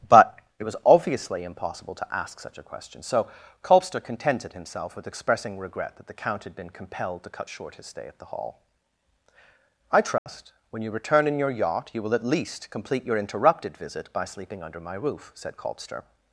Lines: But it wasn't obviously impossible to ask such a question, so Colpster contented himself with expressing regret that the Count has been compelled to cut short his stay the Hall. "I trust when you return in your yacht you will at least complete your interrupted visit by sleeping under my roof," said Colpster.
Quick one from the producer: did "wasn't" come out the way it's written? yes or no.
no